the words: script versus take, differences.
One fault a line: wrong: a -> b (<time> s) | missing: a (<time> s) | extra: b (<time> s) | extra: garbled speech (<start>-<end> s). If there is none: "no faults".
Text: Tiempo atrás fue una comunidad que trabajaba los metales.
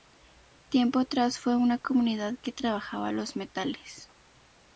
no faults